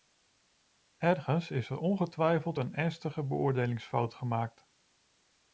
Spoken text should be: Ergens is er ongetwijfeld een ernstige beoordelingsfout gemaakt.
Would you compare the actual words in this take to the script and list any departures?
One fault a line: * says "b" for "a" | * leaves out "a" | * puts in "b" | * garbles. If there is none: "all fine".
all fine